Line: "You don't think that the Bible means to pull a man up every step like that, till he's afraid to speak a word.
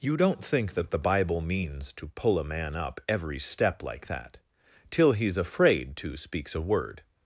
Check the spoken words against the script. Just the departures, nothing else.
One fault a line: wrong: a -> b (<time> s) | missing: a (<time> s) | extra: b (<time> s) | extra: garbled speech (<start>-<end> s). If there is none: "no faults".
wrong: speak -> speaks (6.2 s)